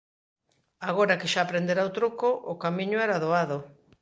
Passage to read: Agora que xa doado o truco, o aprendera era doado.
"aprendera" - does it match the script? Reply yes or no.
no